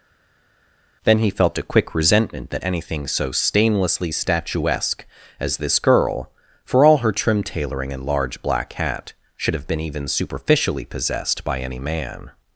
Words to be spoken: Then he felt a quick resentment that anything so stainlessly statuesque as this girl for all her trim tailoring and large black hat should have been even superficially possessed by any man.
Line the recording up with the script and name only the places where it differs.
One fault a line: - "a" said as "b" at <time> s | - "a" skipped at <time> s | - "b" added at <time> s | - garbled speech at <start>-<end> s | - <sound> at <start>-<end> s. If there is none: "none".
none